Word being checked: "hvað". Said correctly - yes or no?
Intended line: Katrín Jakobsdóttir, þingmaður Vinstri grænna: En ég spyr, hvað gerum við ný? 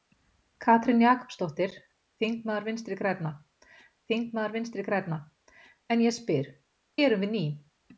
no